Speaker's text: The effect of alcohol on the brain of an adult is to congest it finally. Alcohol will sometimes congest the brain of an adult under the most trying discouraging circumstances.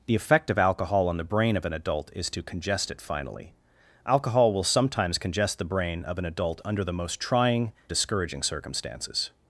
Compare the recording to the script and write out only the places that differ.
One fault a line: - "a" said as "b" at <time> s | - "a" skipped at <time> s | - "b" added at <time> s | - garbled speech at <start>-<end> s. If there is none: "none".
none